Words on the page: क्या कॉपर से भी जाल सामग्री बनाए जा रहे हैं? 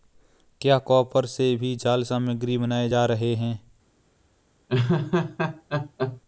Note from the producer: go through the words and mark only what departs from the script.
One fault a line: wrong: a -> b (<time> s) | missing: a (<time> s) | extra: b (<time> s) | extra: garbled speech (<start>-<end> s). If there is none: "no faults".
no faults